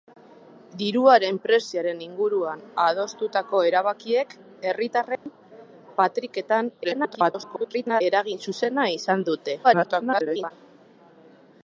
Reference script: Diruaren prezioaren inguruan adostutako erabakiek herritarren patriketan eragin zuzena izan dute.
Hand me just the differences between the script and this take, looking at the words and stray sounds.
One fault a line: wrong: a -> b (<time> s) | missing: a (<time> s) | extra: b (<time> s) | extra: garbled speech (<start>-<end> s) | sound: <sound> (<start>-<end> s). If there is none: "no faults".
sound: dropout (5.2-5.3 s)
extra: garbled speech (6.8-8.0 s)
extra: garbled speech (9.6-10.5 s)